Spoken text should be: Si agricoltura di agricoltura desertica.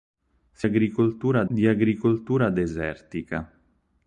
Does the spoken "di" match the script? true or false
true